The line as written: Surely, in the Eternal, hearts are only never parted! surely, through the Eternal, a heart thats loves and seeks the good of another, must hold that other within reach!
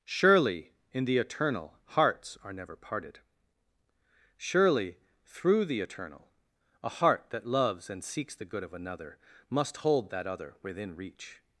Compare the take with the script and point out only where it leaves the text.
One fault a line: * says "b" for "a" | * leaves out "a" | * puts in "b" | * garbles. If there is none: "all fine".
* leaves out "only"
* says "that" for "thats"